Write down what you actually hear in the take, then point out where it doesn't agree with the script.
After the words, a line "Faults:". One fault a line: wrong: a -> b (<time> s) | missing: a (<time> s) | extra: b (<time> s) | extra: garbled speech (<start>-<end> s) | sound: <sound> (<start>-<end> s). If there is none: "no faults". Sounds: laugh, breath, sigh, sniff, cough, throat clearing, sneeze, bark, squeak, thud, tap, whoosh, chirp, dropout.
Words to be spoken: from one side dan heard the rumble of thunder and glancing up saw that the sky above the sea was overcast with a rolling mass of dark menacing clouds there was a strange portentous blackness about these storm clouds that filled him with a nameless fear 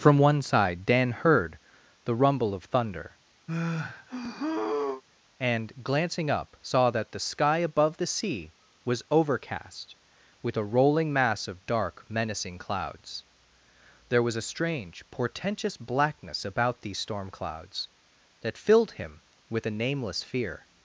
from one side dan heard the rumble of thunder and glancing up saw that the sky above the sea was overcast with a rolling mass of dark menacing clouds there was a strange portentous blackness about these storm clouds that filled him with a nameless fear
Faults:
sound: sigh (3.5-5.0 s)